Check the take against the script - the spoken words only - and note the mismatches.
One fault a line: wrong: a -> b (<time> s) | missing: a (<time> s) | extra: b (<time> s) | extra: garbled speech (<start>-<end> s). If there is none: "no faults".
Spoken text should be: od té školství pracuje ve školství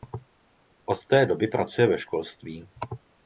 wrong: školství -> doby (1.2 s)